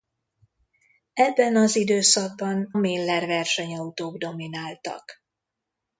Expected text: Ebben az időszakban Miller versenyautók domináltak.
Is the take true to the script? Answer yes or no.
yes